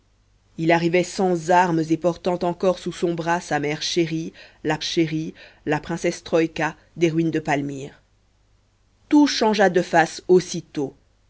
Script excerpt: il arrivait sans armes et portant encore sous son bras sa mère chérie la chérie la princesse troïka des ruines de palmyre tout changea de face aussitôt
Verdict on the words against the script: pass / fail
pass